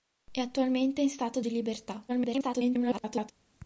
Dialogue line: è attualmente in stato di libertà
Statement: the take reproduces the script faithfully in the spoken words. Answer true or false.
false